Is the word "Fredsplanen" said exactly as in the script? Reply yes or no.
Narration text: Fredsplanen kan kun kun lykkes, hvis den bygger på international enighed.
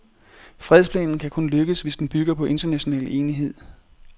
yes